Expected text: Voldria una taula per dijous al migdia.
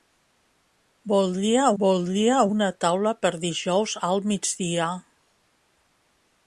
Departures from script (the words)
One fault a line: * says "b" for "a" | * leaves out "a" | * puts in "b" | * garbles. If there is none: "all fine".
* puts in "voldria"